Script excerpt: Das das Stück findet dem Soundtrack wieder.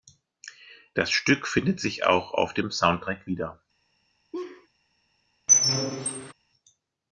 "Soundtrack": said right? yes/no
yes